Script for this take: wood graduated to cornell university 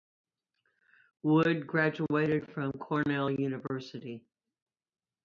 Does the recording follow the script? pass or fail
fail